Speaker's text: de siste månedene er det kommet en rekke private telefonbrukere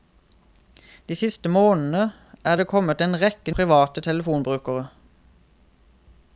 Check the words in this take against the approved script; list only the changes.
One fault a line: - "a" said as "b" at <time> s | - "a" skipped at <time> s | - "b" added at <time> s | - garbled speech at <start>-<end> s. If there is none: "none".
none